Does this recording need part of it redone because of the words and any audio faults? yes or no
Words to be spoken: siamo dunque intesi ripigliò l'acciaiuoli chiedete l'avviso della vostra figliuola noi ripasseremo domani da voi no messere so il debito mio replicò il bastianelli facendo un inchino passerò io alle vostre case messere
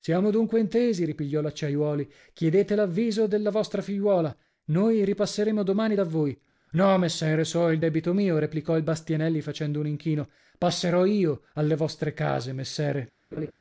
yes